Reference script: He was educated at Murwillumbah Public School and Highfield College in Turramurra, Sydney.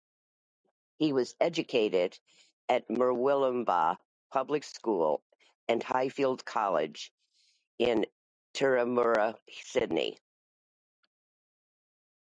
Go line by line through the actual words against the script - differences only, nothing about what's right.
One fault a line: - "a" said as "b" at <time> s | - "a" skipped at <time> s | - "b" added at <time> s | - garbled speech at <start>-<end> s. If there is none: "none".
none